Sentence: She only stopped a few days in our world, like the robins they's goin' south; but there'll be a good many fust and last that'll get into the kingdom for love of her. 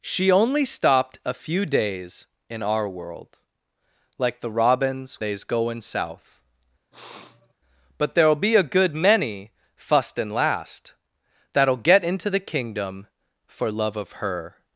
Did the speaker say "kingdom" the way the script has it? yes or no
yes